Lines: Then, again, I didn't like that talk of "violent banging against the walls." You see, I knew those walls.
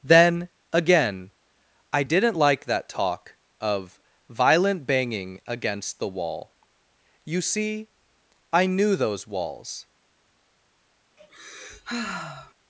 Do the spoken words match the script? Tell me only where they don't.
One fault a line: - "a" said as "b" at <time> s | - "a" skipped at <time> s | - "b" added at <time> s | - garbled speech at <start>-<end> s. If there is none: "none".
- "walls" said as "wall" at 6.1 s